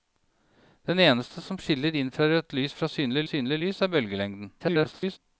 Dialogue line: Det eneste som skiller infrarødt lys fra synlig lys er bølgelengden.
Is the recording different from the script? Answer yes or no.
yes